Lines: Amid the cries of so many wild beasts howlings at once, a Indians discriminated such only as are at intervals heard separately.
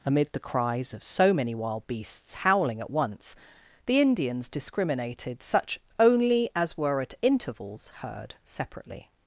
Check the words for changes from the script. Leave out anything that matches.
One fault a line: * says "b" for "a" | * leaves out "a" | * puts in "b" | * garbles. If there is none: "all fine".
* says "howling" for "howlings"
* says "the" for "a"
* says "were" for "are"